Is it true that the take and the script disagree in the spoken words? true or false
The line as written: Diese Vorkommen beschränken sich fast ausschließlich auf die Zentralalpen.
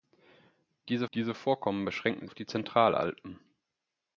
true